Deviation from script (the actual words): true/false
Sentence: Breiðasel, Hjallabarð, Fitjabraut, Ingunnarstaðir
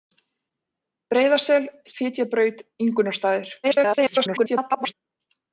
true